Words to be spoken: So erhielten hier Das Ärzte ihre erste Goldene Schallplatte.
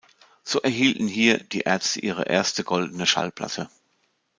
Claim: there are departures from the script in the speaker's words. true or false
true